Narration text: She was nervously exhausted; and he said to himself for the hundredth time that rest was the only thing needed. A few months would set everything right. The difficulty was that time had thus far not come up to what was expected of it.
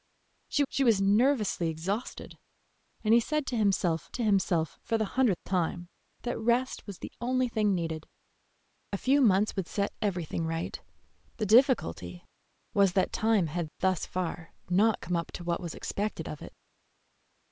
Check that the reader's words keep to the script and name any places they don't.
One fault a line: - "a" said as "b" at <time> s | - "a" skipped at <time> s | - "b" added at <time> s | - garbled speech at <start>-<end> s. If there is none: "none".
- "she" added at 0.7 s
- "to himself" added at 4.1 s